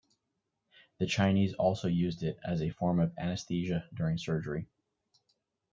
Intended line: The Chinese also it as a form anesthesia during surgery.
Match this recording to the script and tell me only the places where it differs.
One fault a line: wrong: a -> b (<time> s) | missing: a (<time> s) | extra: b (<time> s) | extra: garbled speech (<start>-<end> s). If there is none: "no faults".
extra: used (1.9 s)
extra: of (3.0 s)